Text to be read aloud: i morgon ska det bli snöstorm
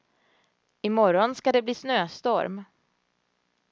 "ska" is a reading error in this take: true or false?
false